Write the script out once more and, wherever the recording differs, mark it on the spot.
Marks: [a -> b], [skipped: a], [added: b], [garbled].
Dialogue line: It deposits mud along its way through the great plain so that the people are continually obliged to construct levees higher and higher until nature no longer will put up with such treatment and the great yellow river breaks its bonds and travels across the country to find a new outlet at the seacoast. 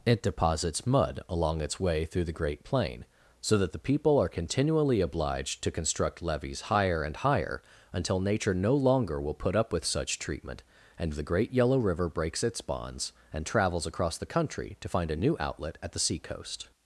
It deposits mud along its way through the great plain so that the people are continually obliged to construct levees higher and higher until nature no longer will put up with such treatment and the great yellow river breaks its bonds and travels across the country to find a new outlet at the seacoast.